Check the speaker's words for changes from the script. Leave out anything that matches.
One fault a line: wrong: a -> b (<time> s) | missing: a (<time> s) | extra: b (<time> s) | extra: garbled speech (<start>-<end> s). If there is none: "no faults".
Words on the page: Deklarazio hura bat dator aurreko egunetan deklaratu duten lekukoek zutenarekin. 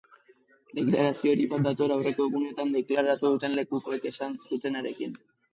wrong: hura -> hori (1.3 s)
extra: esan (4.2 s)